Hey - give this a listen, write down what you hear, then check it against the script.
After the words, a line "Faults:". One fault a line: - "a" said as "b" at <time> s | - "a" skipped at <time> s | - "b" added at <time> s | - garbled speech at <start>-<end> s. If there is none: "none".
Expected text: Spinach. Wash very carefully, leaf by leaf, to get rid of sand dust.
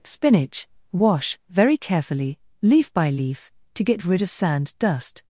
Spinach. Wash very carefully, leaf by leaf, to get rid of sand dust.
Faults:
none